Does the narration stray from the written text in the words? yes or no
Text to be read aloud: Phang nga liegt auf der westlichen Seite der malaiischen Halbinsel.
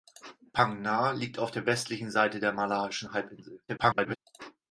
yes